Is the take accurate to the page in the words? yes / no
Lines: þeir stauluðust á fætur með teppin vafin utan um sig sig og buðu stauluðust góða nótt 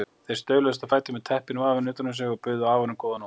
no